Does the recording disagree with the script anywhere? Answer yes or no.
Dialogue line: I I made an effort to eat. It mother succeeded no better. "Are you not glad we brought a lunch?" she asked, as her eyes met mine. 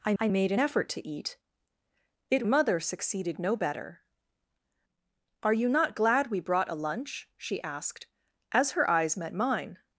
no